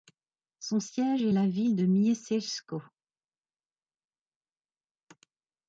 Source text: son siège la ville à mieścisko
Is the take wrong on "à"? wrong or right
wrong